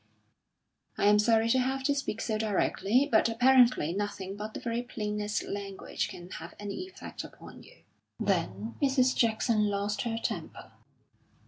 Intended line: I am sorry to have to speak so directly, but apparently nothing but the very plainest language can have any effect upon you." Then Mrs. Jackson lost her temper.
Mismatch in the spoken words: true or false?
false